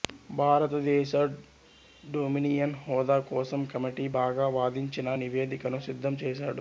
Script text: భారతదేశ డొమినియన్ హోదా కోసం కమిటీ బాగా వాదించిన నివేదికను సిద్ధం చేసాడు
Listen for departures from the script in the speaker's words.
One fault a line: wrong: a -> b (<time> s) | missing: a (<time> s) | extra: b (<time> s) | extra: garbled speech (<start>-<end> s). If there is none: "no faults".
no faults